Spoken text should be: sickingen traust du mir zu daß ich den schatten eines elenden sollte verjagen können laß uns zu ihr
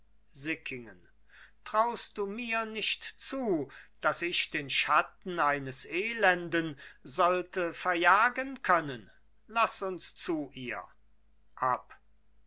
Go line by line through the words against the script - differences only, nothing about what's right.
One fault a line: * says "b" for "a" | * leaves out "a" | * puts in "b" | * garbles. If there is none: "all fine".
* puts in "nicht"